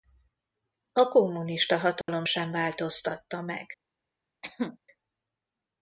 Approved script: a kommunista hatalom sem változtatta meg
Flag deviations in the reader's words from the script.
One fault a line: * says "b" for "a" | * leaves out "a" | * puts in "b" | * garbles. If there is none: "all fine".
all fine